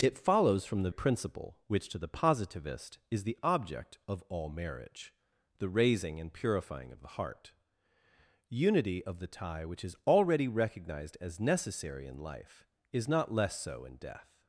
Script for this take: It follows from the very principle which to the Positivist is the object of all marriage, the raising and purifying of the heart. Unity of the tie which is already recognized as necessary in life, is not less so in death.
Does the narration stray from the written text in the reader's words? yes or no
yes